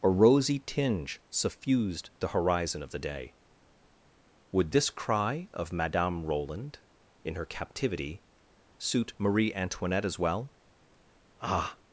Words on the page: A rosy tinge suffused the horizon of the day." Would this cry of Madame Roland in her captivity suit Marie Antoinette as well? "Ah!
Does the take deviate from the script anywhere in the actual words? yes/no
no